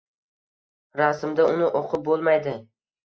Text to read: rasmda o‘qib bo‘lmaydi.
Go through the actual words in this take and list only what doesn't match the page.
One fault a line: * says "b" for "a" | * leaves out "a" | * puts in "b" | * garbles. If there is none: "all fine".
* puts in "uni"